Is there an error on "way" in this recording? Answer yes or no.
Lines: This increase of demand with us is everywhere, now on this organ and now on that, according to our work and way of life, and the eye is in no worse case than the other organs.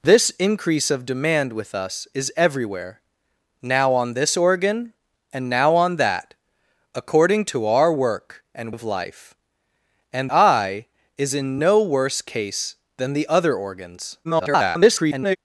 yes